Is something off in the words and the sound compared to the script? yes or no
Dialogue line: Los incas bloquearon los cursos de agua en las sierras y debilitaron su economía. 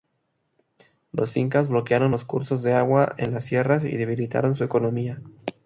no